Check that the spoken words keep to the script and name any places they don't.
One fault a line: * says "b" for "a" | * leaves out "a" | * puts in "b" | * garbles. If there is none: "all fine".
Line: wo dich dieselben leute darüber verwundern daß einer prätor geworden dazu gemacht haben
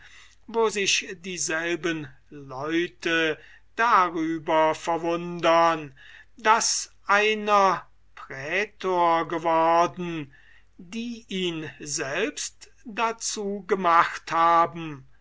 * says "sich" for "dich"
* puts in "die ihn selbst"